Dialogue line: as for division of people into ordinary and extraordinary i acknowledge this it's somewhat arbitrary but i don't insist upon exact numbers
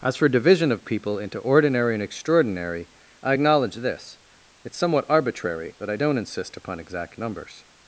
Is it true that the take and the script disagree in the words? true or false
false